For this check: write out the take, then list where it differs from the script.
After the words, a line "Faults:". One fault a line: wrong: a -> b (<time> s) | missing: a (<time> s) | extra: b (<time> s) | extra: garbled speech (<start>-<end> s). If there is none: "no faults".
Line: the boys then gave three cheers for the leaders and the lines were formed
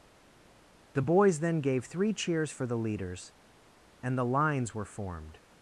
the boys then gave three cheers for the leaders and the lines were formed
Faults:
no faults